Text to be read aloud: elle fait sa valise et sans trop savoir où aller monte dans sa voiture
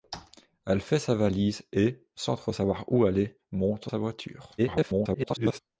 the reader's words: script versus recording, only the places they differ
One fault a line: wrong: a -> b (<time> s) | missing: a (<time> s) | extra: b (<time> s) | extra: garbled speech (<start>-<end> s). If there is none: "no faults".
missing: dans (3.9 s)
extra: garbled speech (4.6-5.6 s)